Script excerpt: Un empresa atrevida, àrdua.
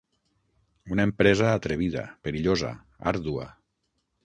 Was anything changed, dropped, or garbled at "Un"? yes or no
yes